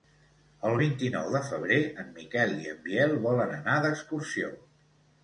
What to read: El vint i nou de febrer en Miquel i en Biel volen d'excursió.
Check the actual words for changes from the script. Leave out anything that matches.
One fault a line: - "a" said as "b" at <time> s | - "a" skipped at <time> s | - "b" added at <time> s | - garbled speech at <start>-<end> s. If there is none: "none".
- "anar" added at 3.6 s